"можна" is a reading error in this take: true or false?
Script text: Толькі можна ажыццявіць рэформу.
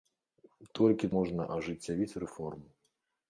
false